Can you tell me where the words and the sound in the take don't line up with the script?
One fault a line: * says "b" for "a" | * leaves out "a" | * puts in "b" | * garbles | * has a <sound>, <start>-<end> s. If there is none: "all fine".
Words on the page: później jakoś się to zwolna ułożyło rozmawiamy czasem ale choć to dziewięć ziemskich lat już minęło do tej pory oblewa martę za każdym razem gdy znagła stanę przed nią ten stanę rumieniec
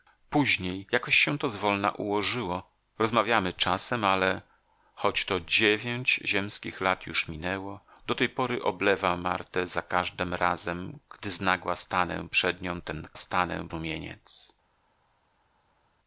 all fine